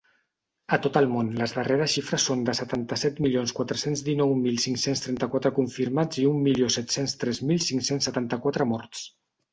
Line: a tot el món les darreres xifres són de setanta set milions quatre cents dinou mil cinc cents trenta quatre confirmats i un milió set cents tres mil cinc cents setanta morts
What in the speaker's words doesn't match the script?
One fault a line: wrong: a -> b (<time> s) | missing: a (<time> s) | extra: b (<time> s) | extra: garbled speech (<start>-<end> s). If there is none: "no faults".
extra: quatre (8.5 s)